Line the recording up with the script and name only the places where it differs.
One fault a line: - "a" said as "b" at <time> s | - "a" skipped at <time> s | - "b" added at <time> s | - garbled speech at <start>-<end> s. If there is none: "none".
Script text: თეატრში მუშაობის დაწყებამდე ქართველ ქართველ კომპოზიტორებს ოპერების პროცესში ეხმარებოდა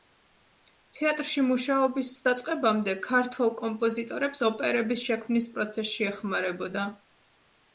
- "ქართველ" skipped at 3.5 s
- "შექმნის" added at 5.1 s